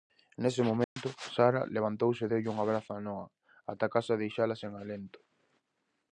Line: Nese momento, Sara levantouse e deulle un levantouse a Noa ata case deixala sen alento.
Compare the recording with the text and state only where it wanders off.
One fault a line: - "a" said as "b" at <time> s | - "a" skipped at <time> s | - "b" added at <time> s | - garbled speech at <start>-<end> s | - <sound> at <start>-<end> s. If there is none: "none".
- dropout at 0.8-1.0 s
- "levantouse" said as "abrazo" at 2.6 s